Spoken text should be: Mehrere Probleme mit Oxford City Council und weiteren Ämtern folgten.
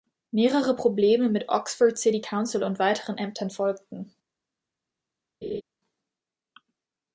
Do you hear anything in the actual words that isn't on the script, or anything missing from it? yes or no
no